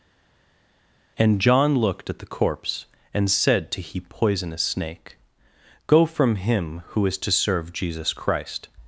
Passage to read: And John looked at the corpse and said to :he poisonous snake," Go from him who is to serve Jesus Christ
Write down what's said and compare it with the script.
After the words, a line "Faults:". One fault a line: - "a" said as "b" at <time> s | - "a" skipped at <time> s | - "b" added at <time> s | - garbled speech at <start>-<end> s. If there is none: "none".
And John looked at the corpse and said to :he poisonous snake," Go from him who is to serve Jesus Christ
Faults:
none